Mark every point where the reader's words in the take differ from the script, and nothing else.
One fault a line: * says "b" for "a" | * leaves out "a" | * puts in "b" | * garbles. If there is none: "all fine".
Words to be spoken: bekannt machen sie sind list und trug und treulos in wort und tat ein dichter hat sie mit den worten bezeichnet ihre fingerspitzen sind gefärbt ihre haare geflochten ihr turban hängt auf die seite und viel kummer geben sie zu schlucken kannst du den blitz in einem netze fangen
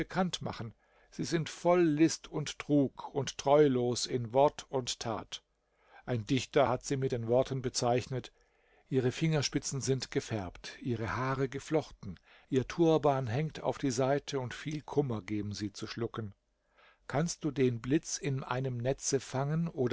* puts in "voll"